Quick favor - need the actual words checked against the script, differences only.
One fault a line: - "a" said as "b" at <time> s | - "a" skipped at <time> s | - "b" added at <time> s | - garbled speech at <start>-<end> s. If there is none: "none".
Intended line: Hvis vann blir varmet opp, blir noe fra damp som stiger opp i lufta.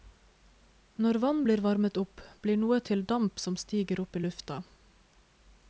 - "Hvis" said as "Når" at 1.1 s
- "fra" said as "til" at 2.9 s